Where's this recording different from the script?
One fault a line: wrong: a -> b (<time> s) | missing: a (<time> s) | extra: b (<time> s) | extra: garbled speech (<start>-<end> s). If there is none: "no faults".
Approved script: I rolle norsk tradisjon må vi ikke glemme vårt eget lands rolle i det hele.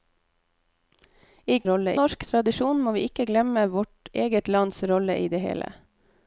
no faults